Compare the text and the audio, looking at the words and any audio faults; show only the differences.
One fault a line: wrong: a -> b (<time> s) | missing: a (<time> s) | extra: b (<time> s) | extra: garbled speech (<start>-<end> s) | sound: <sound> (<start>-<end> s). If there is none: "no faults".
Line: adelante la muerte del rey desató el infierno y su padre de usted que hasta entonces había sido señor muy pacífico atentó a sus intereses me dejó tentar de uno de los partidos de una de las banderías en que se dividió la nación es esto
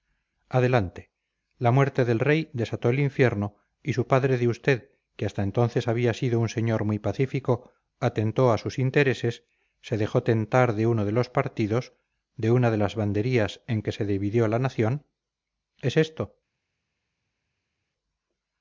extra: un (6.4 s)
wrong: me -> se (9.8 s)